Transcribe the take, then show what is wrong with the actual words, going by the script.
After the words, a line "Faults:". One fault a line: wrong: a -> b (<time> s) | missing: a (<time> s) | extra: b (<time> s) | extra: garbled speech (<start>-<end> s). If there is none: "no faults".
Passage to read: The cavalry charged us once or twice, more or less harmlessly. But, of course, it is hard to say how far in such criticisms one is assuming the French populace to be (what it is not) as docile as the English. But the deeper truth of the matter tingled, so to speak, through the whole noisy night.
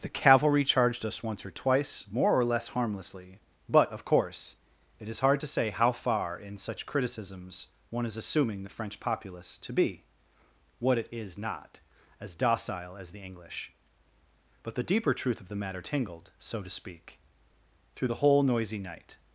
The cavalry charged us once or twice, more or less harmlessly. But, of course, it is hard to say how far in such criticisms one is assuming the French populace to be (what it is not) as docile as the English. But the deeper truth of the matter tingled, so to speak, through the whole noisy night.
Faults:
no faults